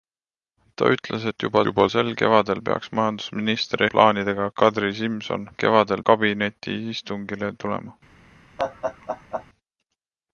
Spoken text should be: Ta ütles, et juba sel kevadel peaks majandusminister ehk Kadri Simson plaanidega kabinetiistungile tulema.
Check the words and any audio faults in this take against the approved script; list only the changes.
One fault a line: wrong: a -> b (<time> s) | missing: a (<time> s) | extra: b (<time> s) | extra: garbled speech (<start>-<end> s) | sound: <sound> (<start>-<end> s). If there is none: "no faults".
extra: juba (1.7 s)
wrong: ehk -> plaanidega (4.0 s)
wrong: plaanidega -> kevadel (5.6 s)
sound: laugh (8.6-9.5 s)